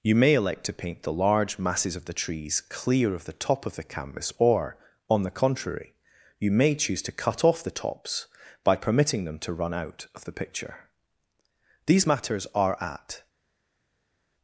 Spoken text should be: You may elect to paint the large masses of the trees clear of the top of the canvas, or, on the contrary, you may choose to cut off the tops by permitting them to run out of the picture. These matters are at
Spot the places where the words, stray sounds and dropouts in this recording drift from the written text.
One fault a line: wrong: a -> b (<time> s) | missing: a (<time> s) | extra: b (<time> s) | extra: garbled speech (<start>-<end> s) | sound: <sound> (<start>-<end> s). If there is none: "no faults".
no faults